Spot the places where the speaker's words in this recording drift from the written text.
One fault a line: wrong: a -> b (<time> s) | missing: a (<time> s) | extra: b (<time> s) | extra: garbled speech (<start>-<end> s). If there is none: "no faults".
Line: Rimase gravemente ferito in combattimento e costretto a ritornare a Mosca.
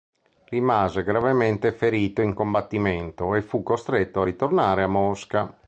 extra: fu (3.4 s)